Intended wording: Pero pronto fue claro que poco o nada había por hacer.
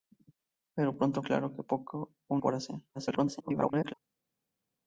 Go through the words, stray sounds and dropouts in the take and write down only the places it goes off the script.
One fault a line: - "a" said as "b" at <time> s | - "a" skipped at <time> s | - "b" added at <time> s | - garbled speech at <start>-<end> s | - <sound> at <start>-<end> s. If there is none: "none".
- "fue" skipped at 1.2 s
- "nada había" skipped at 2.4 s
- garbled speech at 2.9-3.9 s